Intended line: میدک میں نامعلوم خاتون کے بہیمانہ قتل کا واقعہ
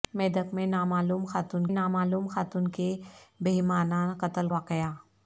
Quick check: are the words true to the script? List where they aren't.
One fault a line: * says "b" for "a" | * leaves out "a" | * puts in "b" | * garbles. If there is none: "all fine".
* puts in "نامعلوم خاتون"
* leaves out "کا"